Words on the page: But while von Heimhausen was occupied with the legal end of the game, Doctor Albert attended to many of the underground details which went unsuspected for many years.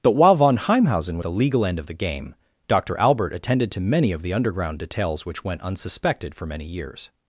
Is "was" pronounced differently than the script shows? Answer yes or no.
yes